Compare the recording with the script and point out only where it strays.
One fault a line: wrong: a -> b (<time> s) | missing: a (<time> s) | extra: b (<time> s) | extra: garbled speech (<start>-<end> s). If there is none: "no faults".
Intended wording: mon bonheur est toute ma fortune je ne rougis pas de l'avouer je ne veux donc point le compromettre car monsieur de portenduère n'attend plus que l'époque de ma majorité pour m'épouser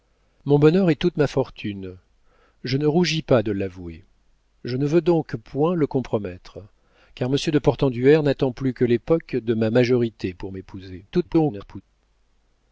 extra: garbled speech (11.1-11.8 s)